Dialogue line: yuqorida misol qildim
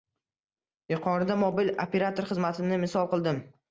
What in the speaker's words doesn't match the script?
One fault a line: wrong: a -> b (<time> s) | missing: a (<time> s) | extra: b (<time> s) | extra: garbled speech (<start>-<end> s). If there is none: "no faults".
extra: mobil operator xizmatini (1.4 s)